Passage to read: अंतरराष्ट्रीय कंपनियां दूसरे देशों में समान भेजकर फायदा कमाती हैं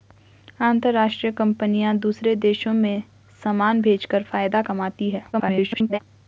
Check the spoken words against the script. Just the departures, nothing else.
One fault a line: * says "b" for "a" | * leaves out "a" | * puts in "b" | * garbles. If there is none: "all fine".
* garbles